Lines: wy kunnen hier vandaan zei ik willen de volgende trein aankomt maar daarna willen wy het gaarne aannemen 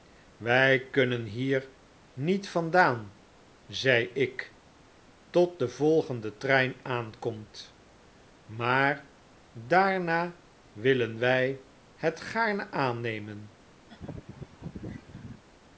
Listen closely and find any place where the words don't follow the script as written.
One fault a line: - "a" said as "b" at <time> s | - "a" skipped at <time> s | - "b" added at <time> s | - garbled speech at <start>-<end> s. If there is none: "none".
- "niet" added at 2.1 s
- "willen" said as "tot" at 5.3 s